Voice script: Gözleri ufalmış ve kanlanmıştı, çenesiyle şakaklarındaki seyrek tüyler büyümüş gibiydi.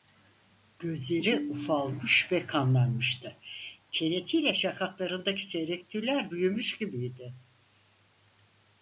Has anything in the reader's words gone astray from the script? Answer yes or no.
no